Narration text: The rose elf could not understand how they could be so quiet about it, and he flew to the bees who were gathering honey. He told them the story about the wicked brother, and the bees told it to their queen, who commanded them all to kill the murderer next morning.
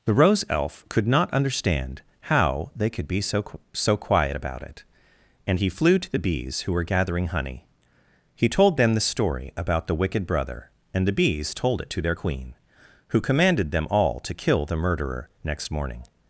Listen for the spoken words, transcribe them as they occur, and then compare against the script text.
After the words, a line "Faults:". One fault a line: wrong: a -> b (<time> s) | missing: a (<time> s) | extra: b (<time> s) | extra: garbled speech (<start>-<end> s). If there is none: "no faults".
The rose elf could not understand how they could be so so quiet about it, and he flew to the bees who were gathering honey. He told them the story about the wicked brother, and the bees told it to their queen, who commanded them all to kill the murderer next morning.
Faults:
extra: so (3.7 s)